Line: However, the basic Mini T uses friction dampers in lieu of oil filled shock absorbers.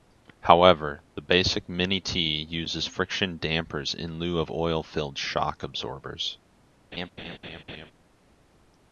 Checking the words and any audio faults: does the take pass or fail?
fail